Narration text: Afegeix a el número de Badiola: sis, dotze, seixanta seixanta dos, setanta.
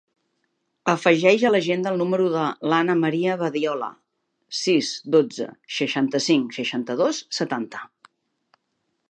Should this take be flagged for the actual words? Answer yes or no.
yes